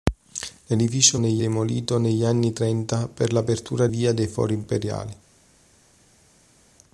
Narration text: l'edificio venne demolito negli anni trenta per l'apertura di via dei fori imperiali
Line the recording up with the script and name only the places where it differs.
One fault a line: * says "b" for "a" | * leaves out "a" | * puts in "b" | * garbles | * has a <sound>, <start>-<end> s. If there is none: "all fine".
* says "negli" for "venne"
* leaves out "di"